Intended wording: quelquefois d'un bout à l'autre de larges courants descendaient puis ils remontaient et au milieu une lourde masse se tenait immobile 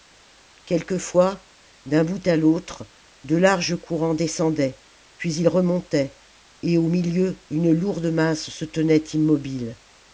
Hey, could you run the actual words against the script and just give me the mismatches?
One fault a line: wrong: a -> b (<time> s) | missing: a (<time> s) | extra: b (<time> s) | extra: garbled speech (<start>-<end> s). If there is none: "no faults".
no faults